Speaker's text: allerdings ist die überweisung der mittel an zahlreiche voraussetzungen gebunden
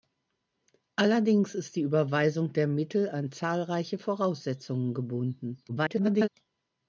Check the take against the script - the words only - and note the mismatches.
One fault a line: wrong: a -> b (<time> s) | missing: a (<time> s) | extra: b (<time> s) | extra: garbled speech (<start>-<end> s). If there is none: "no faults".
extra: garbled speech (5.7-6.3 s)